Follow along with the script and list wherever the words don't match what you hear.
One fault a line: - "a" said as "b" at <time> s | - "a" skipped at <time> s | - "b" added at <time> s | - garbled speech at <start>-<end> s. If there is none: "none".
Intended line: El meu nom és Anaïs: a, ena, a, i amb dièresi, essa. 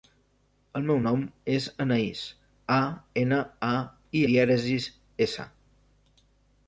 - "amb" skipped at 4.2 s